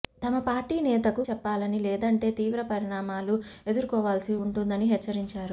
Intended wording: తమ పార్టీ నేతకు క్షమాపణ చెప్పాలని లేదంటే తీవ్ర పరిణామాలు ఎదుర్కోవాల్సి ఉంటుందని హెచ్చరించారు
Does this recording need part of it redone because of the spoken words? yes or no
yes